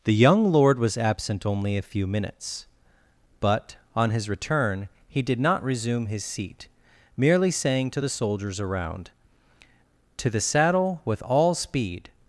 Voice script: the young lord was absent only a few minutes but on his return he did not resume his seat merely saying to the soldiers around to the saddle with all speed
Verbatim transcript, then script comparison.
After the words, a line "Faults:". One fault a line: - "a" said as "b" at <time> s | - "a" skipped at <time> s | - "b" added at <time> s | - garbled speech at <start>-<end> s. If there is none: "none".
the young lord was absent only a few minutes but on his return he did not resume his seat merely saying to the soldiers around to the saddle with all speed
Faults:
none